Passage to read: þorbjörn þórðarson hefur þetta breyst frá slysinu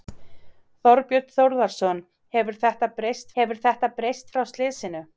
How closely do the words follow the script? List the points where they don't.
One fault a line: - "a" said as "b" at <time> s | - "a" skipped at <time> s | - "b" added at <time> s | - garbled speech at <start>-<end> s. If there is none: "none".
- "hefur þetta breyst" added at 3.4 s